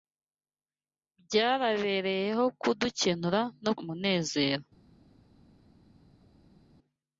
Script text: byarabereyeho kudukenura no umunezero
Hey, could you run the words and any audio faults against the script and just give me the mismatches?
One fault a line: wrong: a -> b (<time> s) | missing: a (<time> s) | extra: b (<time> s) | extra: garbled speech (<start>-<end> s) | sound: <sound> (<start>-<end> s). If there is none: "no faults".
no faults